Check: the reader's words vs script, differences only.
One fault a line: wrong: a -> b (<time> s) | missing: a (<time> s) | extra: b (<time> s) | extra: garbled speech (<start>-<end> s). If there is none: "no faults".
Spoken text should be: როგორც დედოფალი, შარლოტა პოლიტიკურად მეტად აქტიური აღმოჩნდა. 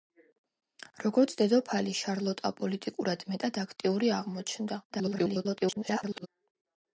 extra: garbled speech (4.9-6.3 s)